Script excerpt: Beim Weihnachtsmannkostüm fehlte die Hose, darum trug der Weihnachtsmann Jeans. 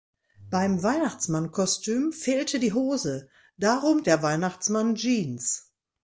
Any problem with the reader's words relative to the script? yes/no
yes